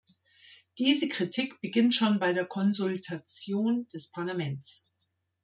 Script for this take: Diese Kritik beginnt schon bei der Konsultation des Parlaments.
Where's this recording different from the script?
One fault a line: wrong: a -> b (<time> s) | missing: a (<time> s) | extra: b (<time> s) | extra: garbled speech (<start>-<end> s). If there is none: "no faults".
no faults